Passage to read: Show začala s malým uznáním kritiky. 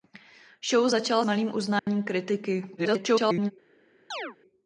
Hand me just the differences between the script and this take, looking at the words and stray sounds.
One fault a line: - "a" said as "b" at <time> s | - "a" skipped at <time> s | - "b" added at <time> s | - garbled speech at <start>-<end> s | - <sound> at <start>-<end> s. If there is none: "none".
- "s" skipped at 1.2 s
- dropout at 1.8-1.9 s
- garbled speech at 2.8-3.5 s
- chirp at 4.1-4.4 s